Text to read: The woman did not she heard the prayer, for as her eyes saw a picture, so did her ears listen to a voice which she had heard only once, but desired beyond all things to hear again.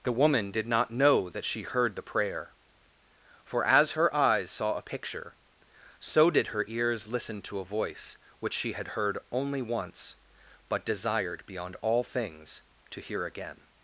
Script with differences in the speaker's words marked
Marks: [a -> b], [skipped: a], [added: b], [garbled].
The woman did not [added: know that] she heard the prayer, for as her eyes saw a picture, so did her ears listen to a voice which she had heard only once, but desired beyond all things to hear again.